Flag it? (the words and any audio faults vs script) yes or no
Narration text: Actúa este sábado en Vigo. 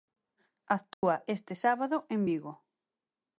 yes